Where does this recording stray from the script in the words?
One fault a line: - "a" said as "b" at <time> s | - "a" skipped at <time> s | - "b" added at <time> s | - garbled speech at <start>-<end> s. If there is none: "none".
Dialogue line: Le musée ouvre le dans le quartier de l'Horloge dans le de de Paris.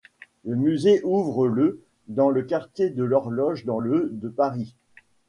- "de" skipped at 4.3 s